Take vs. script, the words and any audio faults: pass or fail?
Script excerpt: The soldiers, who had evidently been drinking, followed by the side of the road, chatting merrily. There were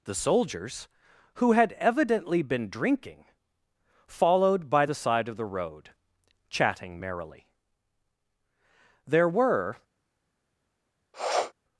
fail